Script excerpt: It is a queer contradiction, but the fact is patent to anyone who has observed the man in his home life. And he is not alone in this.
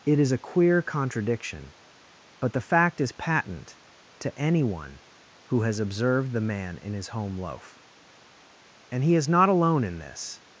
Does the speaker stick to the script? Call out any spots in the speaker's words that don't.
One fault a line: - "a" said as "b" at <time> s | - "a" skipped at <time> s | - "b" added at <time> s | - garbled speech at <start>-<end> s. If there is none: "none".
- "life" said as "loaf" at 7.4 s